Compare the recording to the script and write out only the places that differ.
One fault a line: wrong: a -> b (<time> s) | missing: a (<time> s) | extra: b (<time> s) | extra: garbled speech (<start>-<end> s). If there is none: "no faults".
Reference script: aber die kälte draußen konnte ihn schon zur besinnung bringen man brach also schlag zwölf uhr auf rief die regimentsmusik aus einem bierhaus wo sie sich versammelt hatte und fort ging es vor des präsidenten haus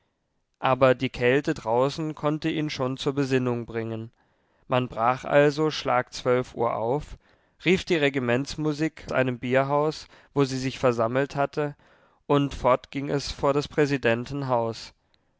missing: aus (9.1 s)